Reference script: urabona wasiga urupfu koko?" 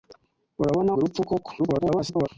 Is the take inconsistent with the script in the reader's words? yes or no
yes